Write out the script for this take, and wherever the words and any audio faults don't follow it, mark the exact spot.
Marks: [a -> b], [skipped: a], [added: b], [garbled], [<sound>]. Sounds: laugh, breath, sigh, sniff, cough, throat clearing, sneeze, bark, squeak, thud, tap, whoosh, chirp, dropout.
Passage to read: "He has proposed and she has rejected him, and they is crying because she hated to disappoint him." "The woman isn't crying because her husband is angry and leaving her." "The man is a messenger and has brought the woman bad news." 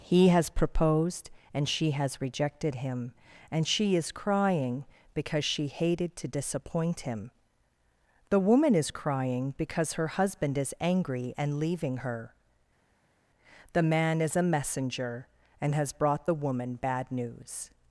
"He has proposed and she has rejected him, and [they -> she] is crying because she hated to disappoint him." "The woman [isn't -> is] crying because her husband is angry and leaving her." "The man is a messenger and has brought the woman bad news."